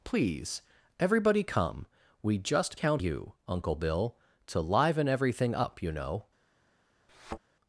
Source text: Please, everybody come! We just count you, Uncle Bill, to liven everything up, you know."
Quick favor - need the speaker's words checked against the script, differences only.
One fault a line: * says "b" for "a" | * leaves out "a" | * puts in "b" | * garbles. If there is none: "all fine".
all fine